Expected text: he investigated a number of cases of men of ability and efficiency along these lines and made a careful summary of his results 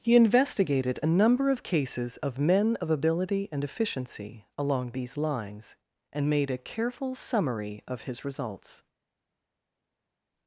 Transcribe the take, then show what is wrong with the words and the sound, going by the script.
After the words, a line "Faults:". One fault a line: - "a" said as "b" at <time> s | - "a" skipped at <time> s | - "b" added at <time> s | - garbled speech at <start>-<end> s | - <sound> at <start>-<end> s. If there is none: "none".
he investigated a number of cases of men of ability and efficiency along these lines and made a careful summary of his results
Faults:
none